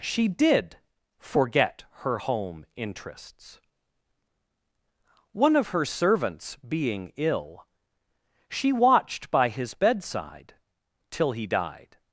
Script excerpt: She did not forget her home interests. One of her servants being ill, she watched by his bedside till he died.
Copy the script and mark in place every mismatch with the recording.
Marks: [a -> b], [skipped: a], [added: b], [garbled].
She did [skipped: not] forget her home interests. One of her servants being ill, she watched by his bedside till he died.